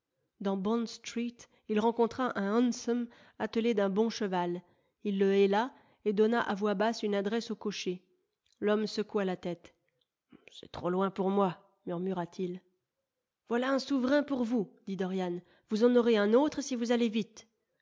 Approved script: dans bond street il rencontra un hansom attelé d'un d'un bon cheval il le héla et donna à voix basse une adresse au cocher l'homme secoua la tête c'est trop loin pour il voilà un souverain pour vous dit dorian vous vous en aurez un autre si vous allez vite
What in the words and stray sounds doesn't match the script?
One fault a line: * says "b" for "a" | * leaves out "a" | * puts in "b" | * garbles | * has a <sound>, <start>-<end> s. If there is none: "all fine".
* leaves out "d'un"
* puts in "moi murmura t"
* leaves out "vous"